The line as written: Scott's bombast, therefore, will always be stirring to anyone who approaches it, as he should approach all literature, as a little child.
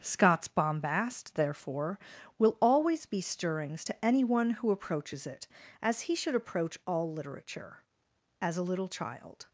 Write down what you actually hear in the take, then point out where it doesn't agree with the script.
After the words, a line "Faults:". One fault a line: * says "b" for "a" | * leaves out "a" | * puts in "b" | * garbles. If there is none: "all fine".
Scott's bombast, therefore, will always be stirrings to anyone who approaches it, as he should approach all literature, as a little child.
Faults:
* says "stirrings" for "stirring"